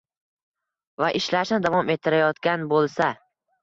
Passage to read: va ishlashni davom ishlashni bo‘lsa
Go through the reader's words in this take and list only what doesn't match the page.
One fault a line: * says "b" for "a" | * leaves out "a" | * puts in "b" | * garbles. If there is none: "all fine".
* says "ettirayotgan" for "ishlashni"